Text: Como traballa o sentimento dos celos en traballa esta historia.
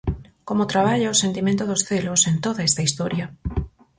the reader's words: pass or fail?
fail